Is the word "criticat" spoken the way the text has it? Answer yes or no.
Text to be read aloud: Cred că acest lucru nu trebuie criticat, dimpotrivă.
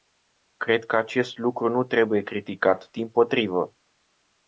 yes